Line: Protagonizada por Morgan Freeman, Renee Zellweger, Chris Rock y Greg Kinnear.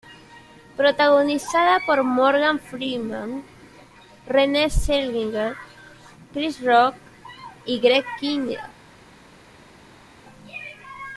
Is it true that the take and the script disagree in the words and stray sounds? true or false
false